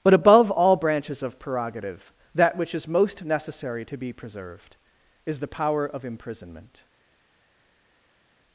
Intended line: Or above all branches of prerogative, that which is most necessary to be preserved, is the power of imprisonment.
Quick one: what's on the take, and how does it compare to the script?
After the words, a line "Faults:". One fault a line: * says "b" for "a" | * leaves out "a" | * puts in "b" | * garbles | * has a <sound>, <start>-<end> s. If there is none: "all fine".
But above all branches of prerogative, that which is most necessary to be preserved, is the power of imprisonment.
Faults:
* says "But" for "Or"